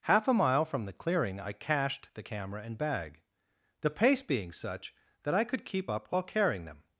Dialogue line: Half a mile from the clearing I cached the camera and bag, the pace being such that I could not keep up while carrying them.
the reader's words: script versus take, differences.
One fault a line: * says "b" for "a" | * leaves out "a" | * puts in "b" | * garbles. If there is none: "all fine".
* leaves out "not"